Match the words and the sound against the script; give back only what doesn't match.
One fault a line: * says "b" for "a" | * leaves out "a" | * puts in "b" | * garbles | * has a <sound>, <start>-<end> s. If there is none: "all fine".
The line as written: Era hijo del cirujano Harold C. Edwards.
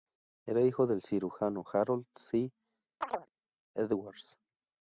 * has a chirp, 3.0-3.3 s